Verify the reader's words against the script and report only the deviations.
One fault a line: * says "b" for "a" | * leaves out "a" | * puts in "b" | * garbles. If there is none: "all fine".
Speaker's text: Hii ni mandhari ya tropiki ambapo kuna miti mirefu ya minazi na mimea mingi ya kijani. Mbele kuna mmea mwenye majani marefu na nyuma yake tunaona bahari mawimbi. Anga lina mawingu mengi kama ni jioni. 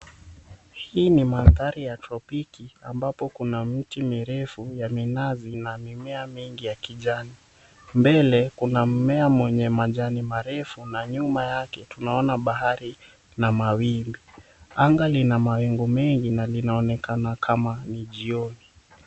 * puts in "na"
* puts in "na linaonekana"